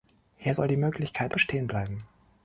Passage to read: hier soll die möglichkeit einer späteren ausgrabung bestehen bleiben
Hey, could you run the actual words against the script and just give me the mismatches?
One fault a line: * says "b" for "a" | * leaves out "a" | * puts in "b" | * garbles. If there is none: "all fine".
* leaves out "einer späteren ausgrabung"